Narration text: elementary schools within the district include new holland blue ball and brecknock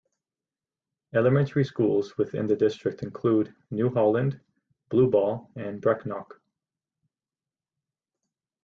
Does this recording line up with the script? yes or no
yes